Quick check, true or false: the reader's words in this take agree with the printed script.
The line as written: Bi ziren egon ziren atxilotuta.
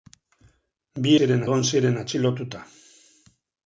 true